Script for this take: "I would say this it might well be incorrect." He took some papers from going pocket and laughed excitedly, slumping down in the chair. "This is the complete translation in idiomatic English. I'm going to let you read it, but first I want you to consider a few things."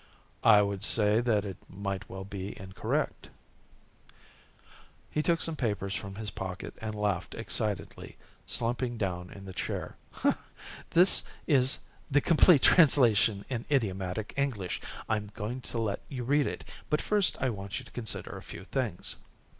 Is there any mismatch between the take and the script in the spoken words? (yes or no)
yes